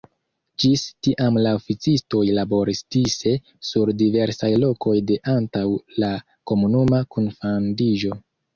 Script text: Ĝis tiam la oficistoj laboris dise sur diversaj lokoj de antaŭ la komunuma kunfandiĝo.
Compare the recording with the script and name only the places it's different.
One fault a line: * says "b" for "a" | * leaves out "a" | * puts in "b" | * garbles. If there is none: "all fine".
all fine